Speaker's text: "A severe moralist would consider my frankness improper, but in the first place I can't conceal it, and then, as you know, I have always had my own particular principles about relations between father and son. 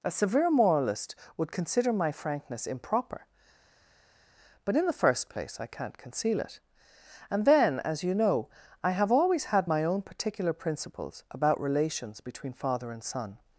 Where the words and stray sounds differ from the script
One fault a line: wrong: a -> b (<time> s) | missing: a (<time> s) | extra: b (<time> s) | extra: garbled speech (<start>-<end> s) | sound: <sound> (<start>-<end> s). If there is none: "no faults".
no faults